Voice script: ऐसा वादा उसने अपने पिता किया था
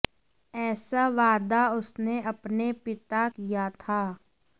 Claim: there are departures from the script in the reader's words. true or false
false